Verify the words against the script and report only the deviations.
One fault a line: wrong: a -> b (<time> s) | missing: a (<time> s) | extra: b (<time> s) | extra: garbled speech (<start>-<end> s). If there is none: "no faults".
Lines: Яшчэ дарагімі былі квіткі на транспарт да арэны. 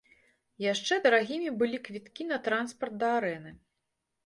no faults